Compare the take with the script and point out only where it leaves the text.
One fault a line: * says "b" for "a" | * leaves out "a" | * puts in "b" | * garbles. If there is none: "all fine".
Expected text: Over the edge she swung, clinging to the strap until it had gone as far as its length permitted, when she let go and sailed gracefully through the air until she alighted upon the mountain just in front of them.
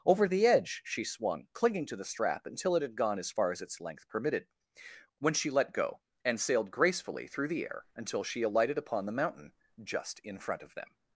all fine